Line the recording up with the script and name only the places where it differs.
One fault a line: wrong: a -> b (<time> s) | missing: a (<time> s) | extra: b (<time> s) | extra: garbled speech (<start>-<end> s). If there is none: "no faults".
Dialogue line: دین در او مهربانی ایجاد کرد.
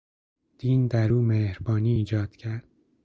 no faults